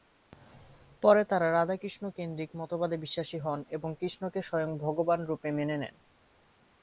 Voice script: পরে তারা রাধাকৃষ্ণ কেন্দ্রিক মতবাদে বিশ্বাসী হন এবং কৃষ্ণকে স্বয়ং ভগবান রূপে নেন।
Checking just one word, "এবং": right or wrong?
right